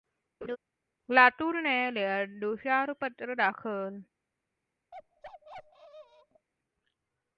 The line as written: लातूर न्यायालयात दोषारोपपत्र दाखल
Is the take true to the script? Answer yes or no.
yes